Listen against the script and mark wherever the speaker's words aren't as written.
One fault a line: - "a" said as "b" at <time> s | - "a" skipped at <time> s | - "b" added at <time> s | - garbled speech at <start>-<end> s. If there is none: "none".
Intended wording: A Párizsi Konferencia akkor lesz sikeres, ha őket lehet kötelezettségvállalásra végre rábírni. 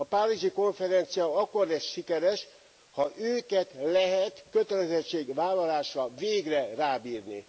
none